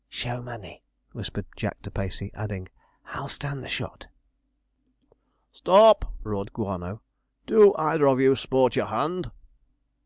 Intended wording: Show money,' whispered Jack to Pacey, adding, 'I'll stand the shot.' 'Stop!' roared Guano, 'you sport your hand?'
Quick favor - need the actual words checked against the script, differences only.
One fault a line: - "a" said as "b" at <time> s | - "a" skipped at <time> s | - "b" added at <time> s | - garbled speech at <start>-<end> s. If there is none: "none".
- "do either of" added at 7.5 s